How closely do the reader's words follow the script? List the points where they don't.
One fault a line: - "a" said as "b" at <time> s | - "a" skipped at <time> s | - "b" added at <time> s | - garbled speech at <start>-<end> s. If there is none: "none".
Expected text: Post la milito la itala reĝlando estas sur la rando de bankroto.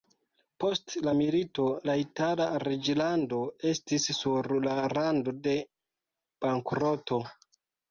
- "estas" said as "estis" at 3.7 s